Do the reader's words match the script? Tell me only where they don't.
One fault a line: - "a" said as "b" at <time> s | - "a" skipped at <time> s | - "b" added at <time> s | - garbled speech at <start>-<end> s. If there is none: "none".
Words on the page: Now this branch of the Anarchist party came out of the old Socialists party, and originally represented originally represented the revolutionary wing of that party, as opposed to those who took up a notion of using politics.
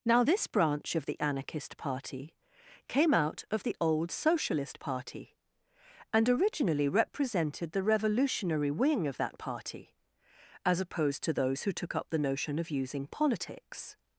- "Socialists" said as "Socialist" at 4.1 s
- "originally represented" skipped at 7.7 s
- "a" said as "the" at 12.1 s